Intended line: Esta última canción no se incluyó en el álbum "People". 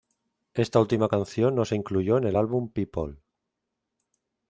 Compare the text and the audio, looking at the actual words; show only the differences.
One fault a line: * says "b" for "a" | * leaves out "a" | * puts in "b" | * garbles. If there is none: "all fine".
all fine